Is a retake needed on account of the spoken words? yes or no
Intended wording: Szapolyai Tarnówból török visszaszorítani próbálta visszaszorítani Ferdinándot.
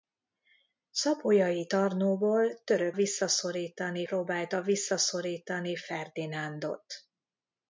no